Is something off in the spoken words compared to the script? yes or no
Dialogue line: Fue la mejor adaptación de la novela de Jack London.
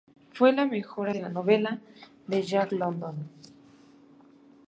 yes